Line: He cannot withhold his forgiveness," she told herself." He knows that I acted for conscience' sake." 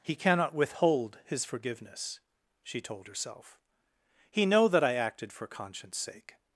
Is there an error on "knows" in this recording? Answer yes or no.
yes